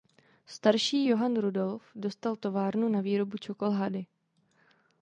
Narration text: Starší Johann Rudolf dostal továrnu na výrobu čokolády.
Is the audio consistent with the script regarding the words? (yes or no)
yes